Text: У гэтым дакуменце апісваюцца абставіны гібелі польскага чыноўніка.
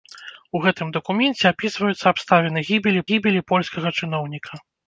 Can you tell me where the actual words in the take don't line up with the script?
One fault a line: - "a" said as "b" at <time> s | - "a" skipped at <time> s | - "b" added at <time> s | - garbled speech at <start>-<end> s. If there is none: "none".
- "гібелі" added at 3.1 s